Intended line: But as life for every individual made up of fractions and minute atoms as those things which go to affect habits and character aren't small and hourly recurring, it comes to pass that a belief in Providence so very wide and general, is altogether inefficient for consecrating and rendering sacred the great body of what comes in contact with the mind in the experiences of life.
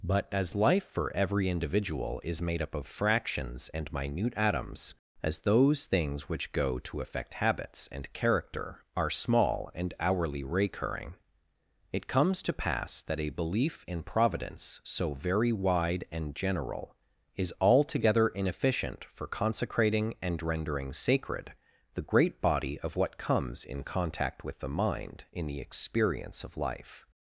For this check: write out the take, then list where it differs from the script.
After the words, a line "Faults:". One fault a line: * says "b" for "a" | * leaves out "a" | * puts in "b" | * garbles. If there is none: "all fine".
But as life for every individual is made up of fractions and minute atoms as those things which go to affect habits and character are small and hourly recurring, it comes to pass that a belief in Providence so very wide and general, is altogether inefficient for consecrating and rendering sacred the great body of what comes in contact with the mind in the experience of life.
Faults:
* puts in "is"
* says "are" for "aren't"
* says "experience" for "experiences"